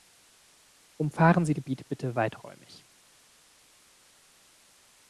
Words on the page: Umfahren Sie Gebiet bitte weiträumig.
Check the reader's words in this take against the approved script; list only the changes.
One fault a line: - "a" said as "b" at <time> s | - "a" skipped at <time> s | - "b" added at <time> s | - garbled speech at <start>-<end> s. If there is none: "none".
none